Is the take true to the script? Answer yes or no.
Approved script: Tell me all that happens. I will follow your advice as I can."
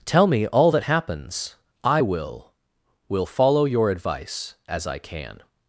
no